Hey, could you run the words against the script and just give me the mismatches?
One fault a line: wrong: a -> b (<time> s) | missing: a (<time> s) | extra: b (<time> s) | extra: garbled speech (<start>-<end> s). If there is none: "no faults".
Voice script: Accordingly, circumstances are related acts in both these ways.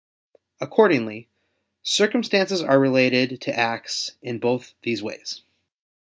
extra: to (3.4 s)